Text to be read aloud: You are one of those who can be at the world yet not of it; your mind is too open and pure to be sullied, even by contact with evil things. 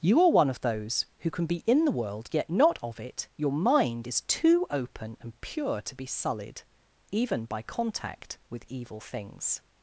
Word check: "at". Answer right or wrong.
wrong